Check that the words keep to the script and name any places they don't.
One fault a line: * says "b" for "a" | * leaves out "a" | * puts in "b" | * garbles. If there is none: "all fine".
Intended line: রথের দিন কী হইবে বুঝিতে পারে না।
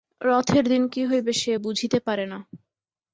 * puts in "সে"